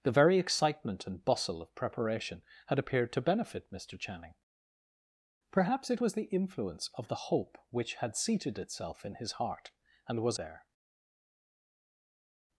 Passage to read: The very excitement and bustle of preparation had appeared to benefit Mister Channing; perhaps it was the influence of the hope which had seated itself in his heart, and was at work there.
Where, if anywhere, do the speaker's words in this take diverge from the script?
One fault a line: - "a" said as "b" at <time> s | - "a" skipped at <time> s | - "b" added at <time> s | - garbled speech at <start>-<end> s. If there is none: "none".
- "at work" skipped at 10.4 s